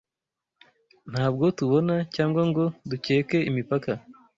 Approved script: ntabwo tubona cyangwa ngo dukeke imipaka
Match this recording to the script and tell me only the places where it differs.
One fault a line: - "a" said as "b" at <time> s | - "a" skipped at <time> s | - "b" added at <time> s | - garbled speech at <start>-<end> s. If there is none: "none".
none